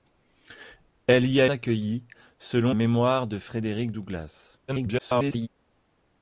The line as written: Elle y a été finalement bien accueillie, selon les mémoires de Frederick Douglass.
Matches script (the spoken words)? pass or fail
fail